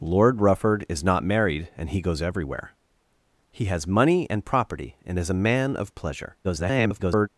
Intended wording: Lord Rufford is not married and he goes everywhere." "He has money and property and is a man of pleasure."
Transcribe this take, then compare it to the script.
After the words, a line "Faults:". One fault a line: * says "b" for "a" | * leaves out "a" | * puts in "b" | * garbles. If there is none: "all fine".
Lord Rufford is not married and he goes everywhere." "He has money and property and is a man of pleasure." [garbled]
Faults:
* garbles